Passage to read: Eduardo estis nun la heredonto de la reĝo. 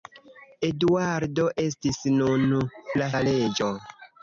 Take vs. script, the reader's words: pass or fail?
fail